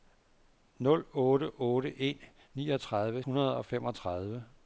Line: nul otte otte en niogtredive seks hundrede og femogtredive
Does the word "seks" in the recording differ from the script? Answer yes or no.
yes